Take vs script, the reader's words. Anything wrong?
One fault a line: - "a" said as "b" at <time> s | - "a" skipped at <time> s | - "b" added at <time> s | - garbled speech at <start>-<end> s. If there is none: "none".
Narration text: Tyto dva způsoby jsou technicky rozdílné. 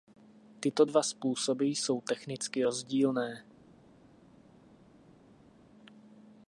none